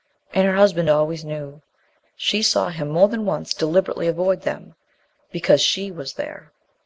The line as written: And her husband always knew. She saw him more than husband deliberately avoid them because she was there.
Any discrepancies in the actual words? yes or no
yes